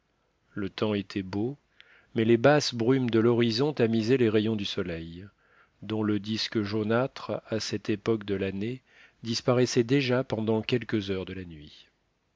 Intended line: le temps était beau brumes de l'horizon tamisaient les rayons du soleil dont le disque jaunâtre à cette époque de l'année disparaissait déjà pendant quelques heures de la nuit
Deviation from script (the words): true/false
true